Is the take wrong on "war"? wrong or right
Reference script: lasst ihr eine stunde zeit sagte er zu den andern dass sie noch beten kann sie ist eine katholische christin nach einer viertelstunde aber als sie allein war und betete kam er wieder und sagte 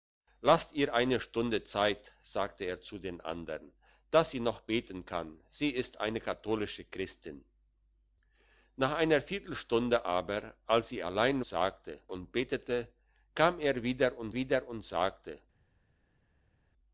wrong